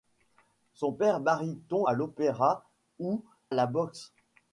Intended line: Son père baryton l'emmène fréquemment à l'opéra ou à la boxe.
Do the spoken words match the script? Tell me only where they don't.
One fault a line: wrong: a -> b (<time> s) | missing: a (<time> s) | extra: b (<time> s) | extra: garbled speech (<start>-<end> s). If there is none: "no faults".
missing: l'emmène fréquemment (1.8 s)
missing: à (3.2 s)